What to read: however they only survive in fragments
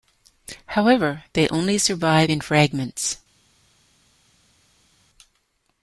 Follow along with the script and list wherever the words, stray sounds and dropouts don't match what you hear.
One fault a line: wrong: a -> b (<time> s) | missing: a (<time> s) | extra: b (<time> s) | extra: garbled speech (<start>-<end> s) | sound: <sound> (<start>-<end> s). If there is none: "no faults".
no faults